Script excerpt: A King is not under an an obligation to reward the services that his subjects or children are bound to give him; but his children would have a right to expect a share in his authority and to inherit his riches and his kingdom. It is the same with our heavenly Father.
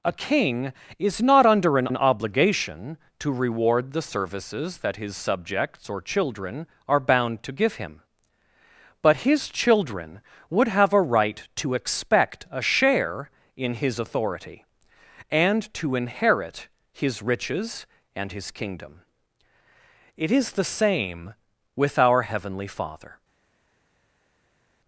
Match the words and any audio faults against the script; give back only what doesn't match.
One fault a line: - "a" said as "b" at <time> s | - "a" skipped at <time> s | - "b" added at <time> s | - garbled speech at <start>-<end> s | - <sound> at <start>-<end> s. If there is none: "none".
none